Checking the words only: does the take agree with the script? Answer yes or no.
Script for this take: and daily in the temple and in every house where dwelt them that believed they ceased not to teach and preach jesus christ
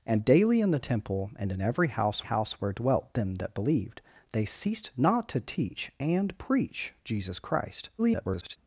no